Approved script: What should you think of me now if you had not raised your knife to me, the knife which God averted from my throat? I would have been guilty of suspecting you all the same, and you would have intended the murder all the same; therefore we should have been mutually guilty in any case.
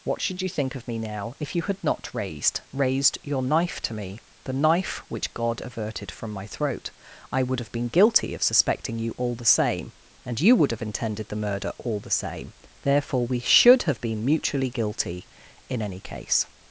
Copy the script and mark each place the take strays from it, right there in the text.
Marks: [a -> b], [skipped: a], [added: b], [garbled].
What should you think of me now if you had not raised [added: raised] your knife to me, the knife which God averted from my throat? I would have been guilty of suspecting you all the same, and you would have intended the murder all the same; therefore we should have been mutually guilty in any case.